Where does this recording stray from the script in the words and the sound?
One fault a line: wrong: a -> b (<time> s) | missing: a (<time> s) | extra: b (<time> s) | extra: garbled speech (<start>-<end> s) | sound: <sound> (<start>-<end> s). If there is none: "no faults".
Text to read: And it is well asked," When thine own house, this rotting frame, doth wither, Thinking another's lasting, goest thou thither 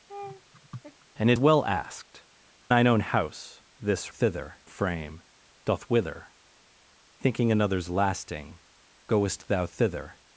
sound: laugh (0.1-1.1 s)
missing: is (1.4 s)
missing: When (2.2 s)
wrong: rotting -> thither (4.1 s)